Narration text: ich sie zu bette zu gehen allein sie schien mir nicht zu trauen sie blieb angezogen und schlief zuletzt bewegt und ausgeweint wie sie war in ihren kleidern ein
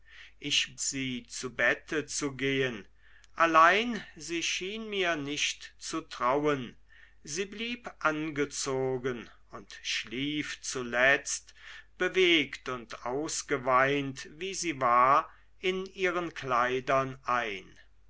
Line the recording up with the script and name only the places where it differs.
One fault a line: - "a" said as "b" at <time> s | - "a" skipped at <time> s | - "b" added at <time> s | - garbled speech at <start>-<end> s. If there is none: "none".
none